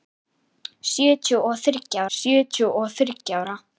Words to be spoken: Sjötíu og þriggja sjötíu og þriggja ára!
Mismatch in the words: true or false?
false